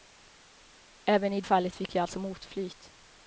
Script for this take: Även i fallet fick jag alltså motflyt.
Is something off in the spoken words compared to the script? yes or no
no